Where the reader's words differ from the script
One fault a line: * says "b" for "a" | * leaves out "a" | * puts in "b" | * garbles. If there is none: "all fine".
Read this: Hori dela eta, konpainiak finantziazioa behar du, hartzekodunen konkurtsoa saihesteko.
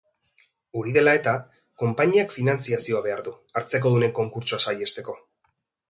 all fine